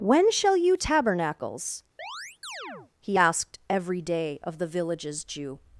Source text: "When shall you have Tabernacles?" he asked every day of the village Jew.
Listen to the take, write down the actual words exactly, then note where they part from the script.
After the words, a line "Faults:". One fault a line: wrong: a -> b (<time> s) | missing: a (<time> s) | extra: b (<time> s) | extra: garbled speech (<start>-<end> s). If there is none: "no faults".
"When shall you Tabernacles?" he asked every day of the villages Jew.
Faults:
missing: have (0.8 s)
wrong: village -> villages (4.7 s)